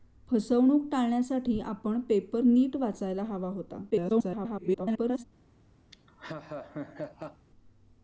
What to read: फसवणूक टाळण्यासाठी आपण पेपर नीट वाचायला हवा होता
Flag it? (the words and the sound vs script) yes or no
yes